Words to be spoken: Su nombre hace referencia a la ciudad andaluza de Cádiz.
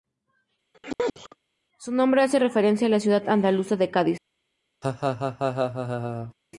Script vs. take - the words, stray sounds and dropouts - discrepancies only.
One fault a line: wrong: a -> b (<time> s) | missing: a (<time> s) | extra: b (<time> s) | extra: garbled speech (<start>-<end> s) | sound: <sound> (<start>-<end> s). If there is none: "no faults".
sound: sneeze (0.7-1.4 s)
sound: laugh (4.8-6.3 s)